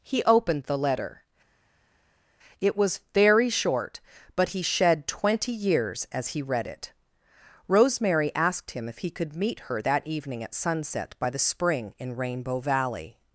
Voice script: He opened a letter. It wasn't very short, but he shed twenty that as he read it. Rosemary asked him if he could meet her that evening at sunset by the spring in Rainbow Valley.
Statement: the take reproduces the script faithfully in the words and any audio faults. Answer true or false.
false